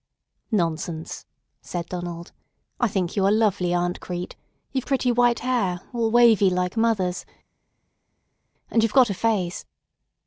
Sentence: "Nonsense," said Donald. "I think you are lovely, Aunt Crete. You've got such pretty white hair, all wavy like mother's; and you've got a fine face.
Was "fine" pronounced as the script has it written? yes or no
no